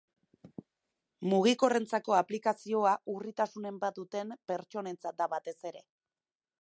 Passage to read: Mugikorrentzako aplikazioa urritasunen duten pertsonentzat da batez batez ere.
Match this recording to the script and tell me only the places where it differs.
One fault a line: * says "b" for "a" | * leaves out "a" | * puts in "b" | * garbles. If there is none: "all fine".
* puts in "bat"
* leaves out "batez"